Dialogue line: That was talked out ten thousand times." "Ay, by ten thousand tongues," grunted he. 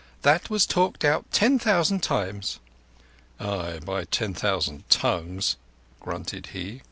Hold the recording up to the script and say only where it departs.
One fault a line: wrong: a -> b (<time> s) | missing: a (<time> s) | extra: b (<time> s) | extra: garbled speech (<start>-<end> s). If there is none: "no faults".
no faults